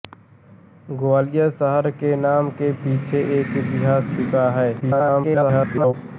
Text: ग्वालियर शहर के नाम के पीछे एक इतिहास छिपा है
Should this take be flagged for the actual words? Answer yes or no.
yes